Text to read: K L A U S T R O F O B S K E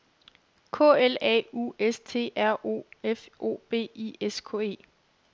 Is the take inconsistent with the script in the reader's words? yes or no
yes